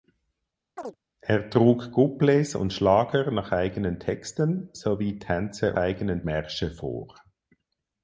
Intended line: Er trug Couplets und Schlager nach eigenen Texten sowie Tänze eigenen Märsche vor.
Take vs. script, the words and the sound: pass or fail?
fail